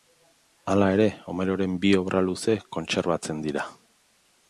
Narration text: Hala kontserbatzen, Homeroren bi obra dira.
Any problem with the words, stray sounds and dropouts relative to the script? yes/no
yes